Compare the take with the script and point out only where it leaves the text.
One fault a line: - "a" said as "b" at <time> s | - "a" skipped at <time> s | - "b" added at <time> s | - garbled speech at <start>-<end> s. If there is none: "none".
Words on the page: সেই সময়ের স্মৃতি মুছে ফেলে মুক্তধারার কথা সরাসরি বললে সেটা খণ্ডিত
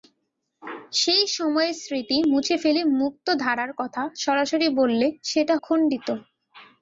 none